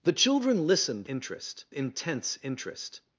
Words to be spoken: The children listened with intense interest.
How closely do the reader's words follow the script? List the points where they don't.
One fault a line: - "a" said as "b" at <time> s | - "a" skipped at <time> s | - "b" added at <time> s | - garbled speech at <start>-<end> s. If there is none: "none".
- "with" said as "interest" at 1.1 s